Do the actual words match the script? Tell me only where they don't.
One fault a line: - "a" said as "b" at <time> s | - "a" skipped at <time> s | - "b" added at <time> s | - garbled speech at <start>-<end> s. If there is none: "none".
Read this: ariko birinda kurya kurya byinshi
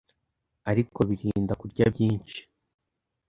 - "kurya" skipped at 1.8 s